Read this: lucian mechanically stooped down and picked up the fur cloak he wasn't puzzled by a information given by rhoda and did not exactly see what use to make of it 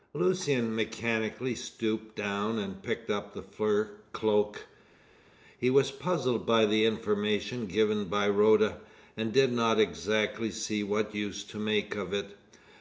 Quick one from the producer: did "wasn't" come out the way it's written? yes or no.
no